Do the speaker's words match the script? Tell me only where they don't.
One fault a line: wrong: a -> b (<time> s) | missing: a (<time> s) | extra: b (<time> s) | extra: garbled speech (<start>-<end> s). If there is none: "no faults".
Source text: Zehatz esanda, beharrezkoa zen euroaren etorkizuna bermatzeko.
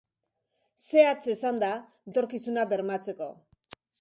missing: beharrezkoa zen euroaren (1.7 s)